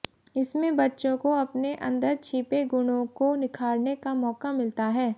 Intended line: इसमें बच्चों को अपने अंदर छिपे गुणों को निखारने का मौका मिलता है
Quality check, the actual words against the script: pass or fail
pass